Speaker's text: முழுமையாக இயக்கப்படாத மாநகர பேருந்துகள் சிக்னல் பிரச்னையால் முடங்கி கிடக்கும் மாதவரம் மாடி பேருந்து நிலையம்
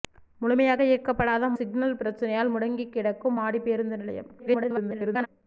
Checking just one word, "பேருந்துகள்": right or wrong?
wrong